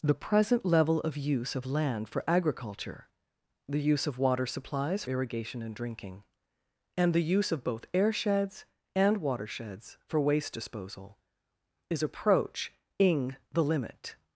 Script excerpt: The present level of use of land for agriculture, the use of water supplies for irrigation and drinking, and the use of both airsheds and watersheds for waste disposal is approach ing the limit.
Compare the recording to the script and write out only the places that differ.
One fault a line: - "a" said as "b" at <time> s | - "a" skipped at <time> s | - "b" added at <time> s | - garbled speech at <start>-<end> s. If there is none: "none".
- "for" skipped at 5.0 s